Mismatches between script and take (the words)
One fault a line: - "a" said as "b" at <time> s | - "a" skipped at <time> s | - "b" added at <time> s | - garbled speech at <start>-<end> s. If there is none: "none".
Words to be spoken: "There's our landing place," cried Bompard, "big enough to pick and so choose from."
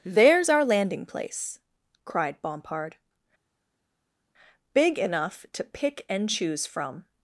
- "so" skipped at 6.3 s